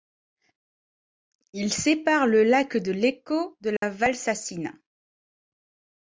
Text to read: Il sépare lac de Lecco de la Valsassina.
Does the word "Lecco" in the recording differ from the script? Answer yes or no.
no